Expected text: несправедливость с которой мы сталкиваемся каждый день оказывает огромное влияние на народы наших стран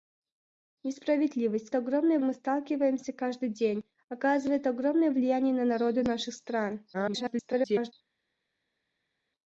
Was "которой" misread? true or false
true